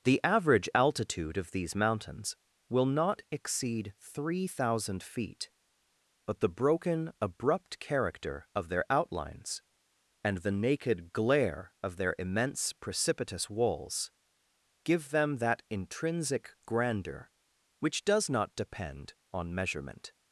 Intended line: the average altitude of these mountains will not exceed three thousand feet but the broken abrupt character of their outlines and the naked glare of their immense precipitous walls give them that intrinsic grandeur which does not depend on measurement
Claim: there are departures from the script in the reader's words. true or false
false